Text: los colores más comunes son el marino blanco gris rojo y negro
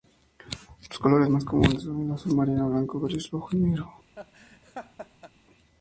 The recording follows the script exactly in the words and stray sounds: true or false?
false